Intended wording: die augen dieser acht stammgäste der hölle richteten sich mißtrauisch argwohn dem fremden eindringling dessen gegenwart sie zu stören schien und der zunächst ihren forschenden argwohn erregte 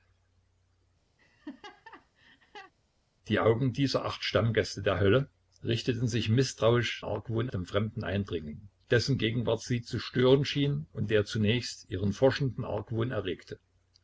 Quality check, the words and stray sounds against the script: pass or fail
fail